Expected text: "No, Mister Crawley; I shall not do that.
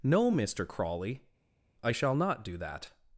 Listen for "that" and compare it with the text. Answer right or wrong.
right